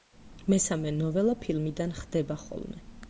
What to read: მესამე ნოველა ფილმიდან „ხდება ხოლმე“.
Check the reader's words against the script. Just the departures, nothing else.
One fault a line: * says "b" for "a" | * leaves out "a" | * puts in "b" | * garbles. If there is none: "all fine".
all fine